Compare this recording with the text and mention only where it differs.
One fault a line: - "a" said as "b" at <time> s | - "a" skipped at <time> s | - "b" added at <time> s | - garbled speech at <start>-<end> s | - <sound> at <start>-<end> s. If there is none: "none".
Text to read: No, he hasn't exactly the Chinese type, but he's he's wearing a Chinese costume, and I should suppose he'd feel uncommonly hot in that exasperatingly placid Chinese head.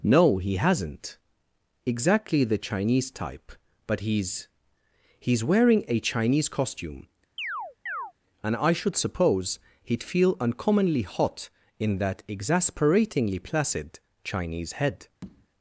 - chirp at 7.4-8.1 s
- tap at 15.2-15.5 s